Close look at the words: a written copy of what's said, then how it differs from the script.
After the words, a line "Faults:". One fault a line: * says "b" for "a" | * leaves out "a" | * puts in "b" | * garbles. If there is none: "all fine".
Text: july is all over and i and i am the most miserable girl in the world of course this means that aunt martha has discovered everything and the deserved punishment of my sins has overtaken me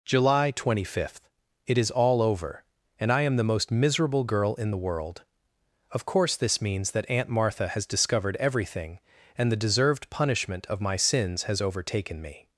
july twenty fifth it is all over and i am the most miserable girl in the world of course this means that aunt martha has discovered everything and the deserved punishment of my sins has overtaken me
Faults:
* puts in "twenty fifth it"
* leaves out "and i"